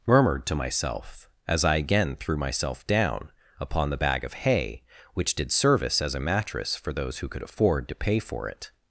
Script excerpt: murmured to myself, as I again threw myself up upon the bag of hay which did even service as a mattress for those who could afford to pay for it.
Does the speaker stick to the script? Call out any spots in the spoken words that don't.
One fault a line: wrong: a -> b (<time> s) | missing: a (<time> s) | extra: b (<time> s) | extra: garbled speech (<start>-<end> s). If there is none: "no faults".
wrong: up -> down (2.9 s)
missing: even (5.5 s)